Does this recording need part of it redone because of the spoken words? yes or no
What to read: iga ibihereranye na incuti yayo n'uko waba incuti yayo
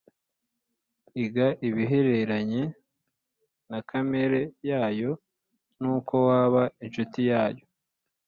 yes